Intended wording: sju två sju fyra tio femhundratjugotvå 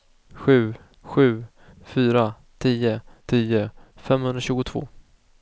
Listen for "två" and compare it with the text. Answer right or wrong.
wrong